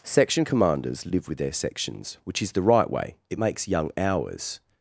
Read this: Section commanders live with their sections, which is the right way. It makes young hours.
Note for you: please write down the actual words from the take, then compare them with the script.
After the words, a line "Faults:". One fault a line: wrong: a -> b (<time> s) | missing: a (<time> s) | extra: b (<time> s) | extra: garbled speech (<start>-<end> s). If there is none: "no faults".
Section commanders live with their sections, which is the right way. It makes young hours.
Faults:
no faults